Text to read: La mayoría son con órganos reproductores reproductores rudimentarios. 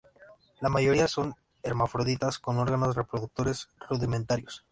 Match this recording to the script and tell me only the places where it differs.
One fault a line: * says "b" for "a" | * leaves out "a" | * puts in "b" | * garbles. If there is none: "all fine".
* puts in "hermafroditas"
* leaves out "reproductores"